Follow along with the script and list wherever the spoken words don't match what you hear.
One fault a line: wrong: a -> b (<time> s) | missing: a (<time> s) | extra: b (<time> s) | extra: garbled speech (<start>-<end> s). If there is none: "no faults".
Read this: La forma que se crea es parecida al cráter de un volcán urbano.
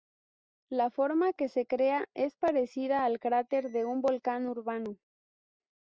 no faults